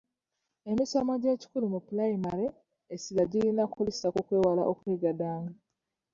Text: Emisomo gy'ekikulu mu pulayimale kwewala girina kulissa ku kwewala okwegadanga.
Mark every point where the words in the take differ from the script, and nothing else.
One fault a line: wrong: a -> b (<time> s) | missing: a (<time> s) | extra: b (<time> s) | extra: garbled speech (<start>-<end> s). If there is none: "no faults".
wrong: kwewala -> essira (2.9 s)